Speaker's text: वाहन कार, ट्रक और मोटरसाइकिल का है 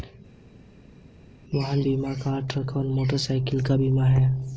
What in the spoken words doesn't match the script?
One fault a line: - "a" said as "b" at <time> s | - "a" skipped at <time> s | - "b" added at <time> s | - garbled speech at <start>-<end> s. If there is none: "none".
- "बीमा" added at 1.8 s
- "बीमा" added at 3.7 s